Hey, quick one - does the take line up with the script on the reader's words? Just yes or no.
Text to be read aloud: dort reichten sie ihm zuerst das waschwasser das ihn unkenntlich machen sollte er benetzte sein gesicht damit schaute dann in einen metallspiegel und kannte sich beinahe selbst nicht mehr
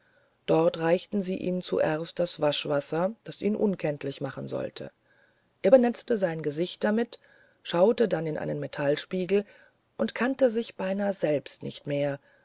yes